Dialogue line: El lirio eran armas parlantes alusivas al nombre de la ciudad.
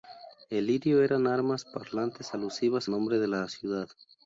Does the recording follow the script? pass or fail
fail